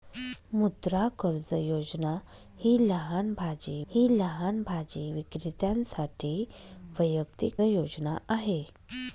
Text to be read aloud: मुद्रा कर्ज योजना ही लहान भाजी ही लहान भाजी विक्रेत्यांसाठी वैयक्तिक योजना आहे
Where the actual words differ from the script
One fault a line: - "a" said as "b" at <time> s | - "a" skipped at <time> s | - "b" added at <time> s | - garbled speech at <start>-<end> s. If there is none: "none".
none